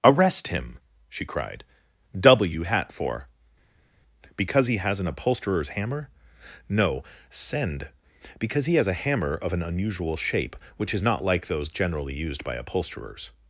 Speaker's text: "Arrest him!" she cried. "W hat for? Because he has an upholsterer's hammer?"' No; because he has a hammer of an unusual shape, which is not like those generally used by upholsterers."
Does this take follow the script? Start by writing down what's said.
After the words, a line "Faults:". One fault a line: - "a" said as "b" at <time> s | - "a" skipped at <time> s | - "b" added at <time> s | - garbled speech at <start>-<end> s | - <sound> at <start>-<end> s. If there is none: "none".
"Arrest him!" she cried. "W hat for? Because he has an upholsterer's hammer?"' No; send because he has a hammer of an unusual shape, which is not like those generally used by upholsterers."
Faults:
- "send" added at 7.3 s